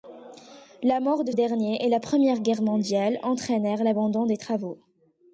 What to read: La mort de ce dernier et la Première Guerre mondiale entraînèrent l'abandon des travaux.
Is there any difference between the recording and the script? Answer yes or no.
yes